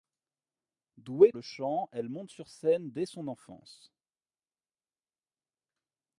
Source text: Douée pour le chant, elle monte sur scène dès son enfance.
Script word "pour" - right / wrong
wrong